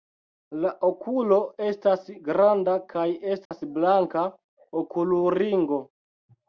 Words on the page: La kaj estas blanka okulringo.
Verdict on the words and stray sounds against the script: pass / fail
fail